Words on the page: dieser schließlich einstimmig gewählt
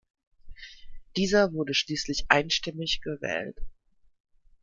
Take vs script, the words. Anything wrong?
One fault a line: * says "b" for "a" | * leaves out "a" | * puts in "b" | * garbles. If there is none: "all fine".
* puts in "wurde"